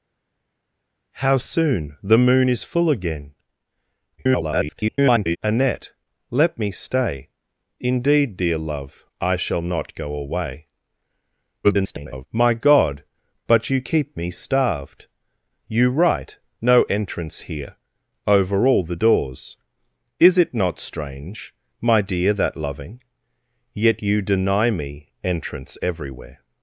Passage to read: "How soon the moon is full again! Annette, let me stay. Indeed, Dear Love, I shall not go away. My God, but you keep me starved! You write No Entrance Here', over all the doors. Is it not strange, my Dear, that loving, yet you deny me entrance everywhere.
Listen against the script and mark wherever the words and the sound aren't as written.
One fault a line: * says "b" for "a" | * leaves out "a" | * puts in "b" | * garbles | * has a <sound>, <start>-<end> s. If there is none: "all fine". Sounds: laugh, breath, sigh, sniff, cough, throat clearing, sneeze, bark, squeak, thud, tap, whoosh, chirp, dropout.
* garbles
* garbles